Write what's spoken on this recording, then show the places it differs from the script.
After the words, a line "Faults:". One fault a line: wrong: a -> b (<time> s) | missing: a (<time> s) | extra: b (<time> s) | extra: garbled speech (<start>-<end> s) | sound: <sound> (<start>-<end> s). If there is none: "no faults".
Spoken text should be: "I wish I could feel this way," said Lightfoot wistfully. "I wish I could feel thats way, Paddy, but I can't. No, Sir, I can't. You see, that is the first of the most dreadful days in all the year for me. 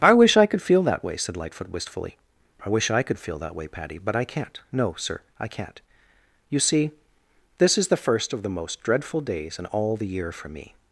"I wish I could feel that way," said Lightfoot wistfully. "I wish I could feel that way, Paddy, but I can't. No, Sir, I can't. You see, this is the first of the most dreadful days in all the year for me.
Faults:
wrong: this -> that (0.8 s)
wrong: thats -> that (3.4 s)
wrong: that -> this (7.6 s)